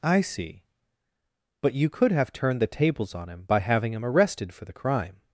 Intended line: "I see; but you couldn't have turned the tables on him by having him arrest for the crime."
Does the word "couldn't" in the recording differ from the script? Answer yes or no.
yes